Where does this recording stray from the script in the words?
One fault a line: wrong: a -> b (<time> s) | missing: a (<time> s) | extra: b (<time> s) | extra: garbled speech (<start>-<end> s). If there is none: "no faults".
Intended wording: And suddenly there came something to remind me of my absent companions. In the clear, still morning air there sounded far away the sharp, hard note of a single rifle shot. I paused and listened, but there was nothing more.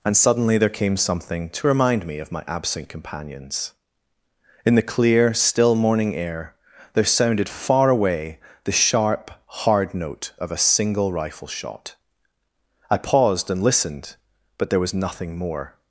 no faults